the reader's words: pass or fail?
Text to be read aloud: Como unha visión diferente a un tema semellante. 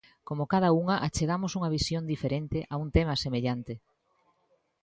fail